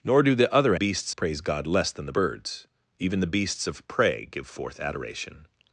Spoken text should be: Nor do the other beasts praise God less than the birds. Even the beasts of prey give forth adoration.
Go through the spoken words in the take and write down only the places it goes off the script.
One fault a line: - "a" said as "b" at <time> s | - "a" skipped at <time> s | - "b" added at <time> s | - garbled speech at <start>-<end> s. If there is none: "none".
none